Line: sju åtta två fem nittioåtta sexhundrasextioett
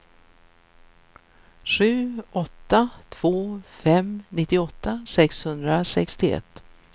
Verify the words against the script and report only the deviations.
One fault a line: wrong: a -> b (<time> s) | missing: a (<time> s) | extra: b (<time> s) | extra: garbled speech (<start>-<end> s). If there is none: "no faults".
no faults